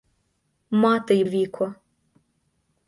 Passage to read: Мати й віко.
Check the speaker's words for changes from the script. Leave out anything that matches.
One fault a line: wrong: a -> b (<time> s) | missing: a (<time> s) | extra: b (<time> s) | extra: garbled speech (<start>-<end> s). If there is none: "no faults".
no faults